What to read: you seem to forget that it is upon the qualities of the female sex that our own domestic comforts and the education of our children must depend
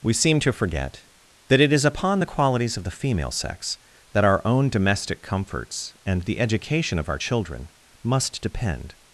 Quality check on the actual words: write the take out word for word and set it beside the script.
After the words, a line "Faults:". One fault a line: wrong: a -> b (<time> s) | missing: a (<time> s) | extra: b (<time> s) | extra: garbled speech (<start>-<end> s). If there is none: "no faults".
we seem to forget that it is upon the qualities of the female sex that our own domestic comforts and the education of our children must depend
Faults:
wrong: you -> we (0.0 s)